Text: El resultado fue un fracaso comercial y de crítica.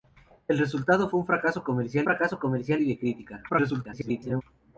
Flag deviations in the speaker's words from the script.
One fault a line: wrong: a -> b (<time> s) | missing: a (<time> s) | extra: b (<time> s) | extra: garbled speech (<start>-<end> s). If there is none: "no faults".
extra: fracaso comercial (2.0 s)
extra: garbled speech (3.5-4.4 s)